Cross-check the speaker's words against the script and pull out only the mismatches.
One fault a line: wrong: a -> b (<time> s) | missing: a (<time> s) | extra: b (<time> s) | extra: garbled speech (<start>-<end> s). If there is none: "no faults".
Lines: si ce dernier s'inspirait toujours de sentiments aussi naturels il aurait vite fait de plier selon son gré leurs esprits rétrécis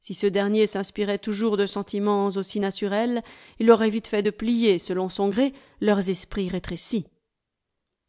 no faults